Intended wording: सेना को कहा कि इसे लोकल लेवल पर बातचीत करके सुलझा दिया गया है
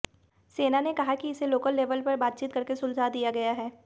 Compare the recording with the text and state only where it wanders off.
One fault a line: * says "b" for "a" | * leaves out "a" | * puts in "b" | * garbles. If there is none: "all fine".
* says "ने" for "को"